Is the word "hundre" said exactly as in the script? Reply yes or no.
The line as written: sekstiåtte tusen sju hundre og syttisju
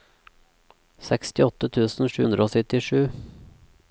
yes